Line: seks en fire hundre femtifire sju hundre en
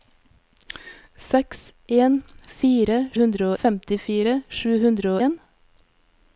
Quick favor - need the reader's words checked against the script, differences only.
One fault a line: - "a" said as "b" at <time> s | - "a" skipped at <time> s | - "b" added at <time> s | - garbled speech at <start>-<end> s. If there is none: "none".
none